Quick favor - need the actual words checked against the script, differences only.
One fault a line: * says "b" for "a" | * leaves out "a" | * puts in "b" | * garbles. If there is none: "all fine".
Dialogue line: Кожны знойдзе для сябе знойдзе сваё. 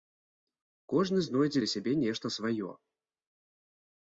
* says "нешта" for "знойдзе"